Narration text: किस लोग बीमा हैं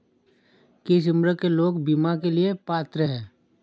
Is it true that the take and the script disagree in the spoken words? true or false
true